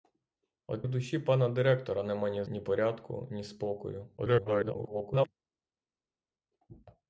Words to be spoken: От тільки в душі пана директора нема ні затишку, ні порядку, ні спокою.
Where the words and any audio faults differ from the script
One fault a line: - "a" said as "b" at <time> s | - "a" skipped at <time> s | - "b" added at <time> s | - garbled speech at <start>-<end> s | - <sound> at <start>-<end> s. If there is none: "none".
- "тільки" skipped at 0.8 s
- "затишку" skipped at 2.4 s
- garbled speech at 4.2-5.3 s